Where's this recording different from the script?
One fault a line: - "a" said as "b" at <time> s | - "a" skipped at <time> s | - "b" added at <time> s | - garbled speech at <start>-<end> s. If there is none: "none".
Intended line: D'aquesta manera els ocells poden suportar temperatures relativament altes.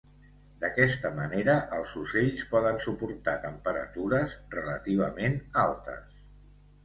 none